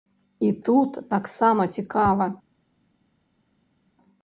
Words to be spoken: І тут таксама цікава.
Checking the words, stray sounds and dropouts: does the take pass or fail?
pass